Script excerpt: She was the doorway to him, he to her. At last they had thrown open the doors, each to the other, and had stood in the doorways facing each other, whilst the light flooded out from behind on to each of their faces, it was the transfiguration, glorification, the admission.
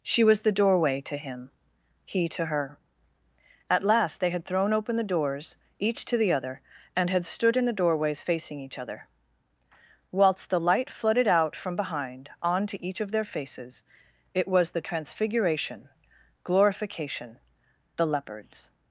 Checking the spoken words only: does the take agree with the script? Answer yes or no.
no